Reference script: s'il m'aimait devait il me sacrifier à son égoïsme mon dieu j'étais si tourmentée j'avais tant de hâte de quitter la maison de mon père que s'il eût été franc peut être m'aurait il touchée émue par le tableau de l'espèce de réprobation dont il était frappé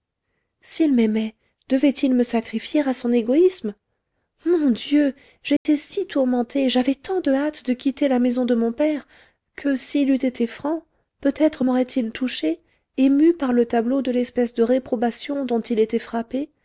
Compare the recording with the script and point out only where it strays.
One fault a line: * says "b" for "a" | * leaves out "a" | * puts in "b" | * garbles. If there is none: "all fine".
all fine